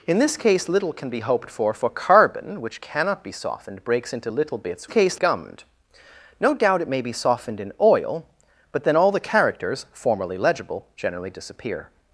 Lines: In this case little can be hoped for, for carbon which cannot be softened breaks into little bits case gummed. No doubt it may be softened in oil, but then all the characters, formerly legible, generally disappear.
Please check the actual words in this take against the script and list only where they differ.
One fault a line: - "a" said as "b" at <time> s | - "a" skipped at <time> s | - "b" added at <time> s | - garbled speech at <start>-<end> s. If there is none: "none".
none